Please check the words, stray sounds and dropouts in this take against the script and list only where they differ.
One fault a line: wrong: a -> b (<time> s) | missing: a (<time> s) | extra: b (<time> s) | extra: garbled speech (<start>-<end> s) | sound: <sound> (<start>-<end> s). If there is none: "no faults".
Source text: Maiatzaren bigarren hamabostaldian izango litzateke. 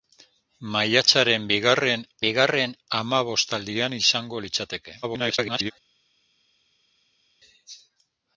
extra: bigarren (2.2 s)
extra: garbled speech (5.0-5.7 s)